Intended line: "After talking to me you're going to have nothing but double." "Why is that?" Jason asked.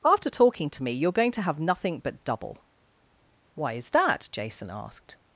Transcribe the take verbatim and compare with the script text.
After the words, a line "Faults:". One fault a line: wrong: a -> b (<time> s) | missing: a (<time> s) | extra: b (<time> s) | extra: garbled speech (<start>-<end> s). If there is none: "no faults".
"After talking to me you're going to have nothing but double." "Why is that?" Jason asked.
Faults:
no faults